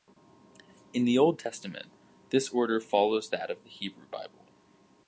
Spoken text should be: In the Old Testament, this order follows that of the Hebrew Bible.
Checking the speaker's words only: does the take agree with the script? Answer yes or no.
yes